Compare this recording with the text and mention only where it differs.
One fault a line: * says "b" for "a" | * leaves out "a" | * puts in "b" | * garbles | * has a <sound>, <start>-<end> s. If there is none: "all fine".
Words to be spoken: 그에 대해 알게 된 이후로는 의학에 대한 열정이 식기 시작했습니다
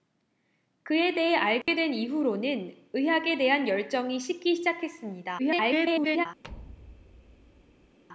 * has a dropout, 1.6-1.7 s
* garbles
* has a thud, 6.4-8.0 s